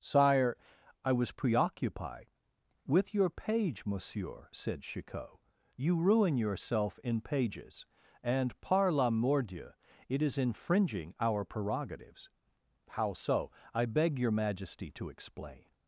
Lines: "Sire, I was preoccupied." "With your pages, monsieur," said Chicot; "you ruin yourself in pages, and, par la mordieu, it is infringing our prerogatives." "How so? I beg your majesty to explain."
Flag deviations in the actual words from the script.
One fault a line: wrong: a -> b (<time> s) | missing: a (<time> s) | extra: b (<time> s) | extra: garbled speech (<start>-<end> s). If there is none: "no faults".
wrong: pages -> page (3.3 s)